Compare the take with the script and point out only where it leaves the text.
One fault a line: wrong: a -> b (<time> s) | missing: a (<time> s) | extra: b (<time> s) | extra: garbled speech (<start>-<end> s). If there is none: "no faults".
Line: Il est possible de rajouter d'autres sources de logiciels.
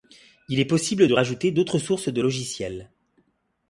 no faults